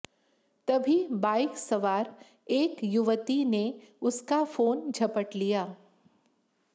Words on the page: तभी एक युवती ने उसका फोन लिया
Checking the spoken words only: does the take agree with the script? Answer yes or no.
no